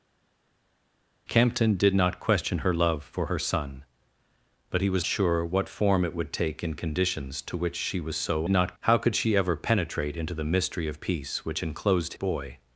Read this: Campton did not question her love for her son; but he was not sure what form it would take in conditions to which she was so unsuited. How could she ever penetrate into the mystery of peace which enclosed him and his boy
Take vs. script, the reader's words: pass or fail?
fail